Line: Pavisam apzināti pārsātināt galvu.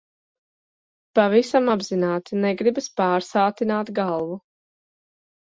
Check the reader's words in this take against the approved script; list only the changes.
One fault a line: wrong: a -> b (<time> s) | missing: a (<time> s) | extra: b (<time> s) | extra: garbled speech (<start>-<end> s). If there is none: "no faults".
extra: negribas (2.4 s)